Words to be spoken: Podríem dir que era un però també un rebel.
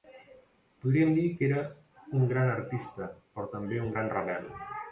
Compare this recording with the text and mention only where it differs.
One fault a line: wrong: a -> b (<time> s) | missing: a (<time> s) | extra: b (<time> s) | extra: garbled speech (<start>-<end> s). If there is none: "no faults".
extra: gran artista (2.3 s)
extra: gran (4.0 s)